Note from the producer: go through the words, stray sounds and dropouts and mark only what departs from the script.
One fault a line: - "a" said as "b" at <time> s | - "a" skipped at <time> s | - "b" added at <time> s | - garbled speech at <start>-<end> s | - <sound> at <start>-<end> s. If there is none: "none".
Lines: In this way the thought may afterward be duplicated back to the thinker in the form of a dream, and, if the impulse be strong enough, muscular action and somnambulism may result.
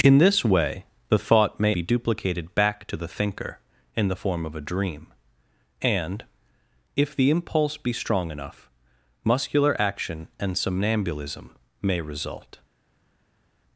- "afterward" skipped at 1.8 s